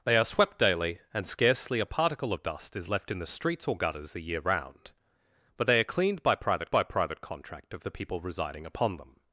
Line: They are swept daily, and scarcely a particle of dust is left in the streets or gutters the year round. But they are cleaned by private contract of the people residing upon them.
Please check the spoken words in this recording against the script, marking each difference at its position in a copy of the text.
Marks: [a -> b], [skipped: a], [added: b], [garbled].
They are swept daily, and scarcely a particle of dust is left in the streets or gutters the year round. But they are cleaned by private [added: by private] contract of the people residing upon them.